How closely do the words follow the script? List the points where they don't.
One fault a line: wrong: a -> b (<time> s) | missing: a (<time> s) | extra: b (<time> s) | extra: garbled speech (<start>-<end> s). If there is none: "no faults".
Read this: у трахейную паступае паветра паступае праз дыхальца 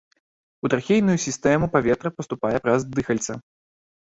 wrong: паступае -> сістэму (1.2 s)